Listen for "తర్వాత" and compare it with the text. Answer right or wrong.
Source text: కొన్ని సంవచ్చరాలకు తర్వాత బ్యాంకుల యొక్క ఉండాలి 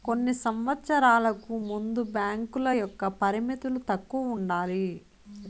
wrong